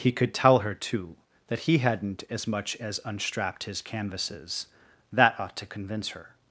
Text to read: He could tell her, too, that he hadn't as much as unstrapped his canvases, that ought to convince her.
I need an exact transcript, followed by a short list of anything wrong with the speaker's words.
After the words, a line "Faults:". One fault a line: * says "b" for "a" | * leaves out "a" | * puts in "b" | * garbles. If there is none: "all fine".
He could tell her, too, that he hadn't as much as unstrapped his canvases, that ought to convince her.
Faults:
all fine